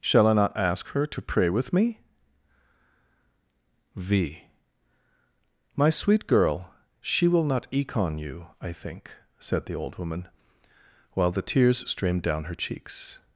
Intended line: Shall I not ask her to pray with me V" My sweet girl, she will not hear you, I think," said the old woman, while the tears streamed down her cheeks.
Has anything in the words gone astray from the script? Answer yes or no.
yes